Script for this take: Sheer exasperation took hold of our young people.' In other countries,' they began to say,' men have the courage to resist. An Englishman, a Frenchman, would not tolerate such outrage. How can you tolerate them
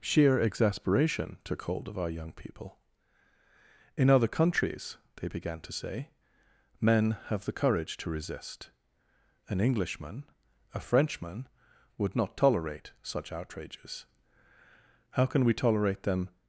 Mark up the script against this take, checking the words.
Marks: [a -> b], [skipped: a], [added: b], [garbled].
Sheer exasperation took hold of our young people.' In other countries,' they began to say,' men have the courage to resist. An Englishman, a Frenchman, would not tolerate such [outrage. -> outrages] How can [you -> we] tolerate them